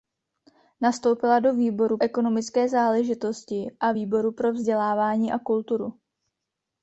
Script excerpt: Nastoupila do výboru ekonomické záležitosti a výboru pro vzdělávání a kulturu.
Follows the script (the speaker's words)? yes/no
yes